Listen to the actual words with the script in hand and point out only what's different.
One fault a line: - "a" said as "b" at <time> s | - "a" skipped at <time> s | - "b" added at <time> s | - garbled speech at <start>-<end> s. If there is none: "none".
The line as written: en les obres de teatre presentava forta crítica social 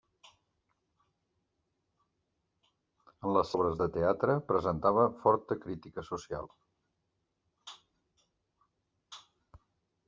none